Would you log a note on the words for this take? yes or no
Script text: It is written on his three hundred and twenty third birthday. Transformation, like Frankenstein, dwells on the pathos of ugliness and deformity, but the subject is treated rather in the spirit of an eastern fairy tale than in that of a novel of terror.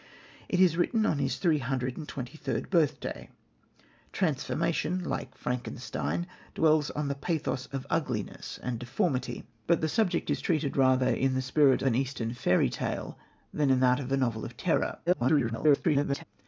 yes